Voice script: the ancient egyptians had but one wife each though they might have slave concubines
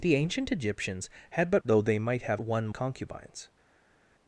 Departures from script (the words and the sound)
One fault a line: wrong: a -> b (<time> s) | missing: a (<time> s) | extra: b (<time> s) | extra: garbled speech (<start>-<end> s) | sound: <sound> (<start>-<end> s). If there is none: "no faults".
missing: one wife each (1.6 s)
wrong: slave -> one (2.4 s)